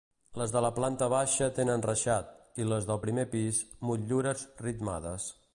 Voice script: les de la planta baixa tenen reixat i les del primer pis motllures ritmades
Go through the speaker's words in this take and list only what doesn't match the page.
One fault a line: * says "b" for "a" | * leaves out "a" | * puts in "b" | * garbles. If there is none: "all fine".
all fine